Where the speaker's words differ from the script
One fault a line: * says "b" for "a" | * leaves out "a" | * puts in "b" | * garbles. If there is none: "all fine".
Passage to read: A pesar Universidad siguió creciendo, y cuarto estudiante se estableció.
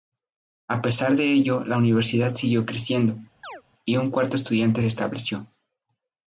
* puts in "de ello la"
* puts in "un"